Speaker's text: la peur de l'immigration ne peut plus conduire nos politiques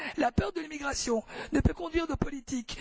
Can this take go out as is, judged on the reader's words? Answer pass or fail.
fail